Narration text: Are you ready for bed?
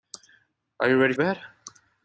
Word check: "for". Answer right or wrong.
wrong